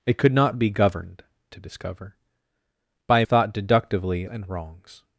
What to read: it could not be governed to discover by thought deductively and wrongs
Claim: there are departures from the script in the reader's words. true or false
false